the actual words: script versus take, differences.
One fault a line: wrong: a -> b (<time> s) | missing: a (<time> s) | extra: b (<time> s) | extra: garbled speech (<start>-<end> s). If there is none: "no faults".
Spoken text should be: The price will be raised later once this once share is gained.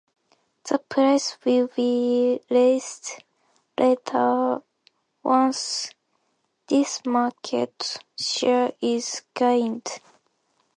wrong: once -> market (7.0 s)